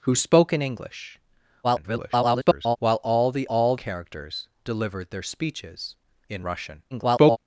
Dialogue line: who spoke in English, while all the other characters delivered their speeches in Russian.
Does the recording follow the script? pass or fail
fail